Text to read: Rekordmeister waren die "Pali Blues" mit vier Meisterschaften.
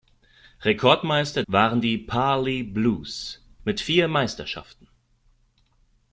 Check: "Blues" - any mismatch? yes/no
no